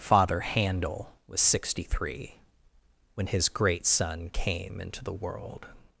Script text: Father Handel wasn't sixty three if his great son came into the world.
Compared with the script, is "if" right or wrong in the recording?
wrong